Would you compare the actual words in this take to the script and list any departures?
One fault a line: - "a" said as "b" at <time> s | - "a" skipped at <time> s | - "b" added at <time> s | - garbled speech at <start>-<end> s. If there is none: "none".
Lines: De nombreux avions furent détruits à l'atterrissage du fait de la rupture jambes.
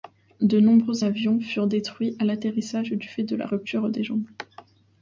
- "des" added at 3.9 s